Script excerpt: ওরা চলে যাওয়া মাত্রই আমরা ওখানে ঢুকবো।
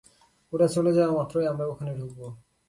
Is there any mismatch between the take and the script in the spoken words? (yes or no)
no